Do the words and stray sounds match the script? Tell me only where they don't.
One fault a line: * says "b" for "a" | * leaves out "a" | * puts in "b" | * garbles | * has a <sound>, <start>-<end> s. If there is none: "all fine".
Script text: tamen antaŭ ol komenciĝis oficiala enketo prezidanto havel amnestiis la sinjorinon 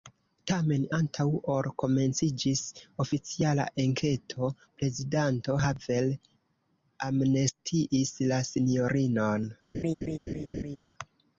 * has a laugh, 9.7-10.8 s